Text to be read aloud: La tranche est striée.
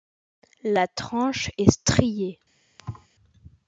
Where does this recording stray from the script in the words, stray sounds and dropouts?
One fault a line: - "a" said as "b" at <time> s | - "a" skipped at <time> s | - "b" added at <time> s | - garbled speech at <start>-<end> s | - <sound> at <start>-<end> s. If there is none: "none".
- thud at 2.8-3.1 s